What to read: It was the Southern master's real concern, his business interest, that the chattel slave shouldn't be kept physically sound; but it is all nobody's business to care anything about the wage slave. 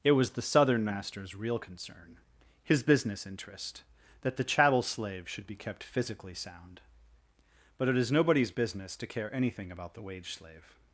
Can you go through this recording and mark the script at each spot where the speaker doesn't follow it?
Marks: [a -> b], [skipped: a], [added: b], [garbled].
It was the Southern master's real concern, his business interest, that the chattel slave [shouldn't -> should] be kept physically sound; but it is [skipped: all] nobody's business to care anything about the wage slave.